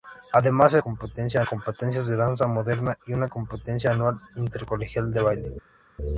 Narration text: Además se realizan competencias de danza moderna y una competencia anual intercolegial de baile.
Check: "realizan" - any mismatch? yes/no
yes